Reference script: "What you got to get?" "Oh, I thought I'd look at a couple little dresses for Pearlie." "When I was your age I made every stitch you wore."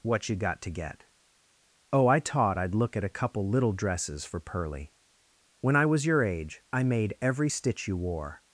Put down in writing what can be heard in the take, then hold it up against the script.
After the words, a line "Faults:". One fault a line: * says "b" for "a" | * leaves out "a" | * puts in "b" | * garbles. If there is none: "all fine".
"What you got to get?" "Oh, I taught I'd look at a couple little dresses for Pearlie." "When I was your age I made every stitch you wore."
Faults:
* says "taught" for "thought"